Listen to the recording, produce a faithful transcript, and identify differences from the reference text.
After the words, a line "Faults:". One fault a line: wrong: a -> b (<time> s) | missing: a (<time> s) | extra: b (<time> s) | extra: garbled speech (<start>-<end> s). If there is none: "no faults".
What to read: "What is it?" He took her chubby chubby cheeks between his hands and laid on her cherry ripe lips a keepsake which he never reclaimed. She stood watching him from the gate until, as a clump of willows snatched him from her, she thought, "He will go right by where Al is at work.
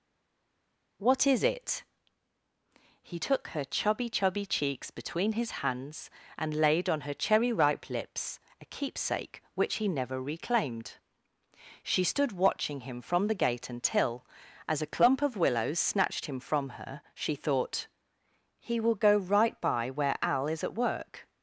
"What is it?" He took her chubby chubby cheeks between his hands and laid on her cherry ripe lips a keepsake which he never reclaimed. She stood watching him from the gate until, as a clump of willows snatched him from her, she thought, "He will go right by where Al is at work.
Faults:
no faults